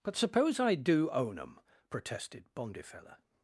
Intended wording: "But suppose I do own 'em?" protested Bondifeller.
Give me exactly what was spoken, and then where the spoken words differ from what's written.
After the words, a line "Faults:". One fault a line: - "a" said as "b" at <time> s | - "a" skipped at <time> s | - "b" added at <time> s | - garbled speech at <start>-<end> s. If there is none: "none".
"But suppose I do own 'em?" protested Bondifeller.
Faults:
none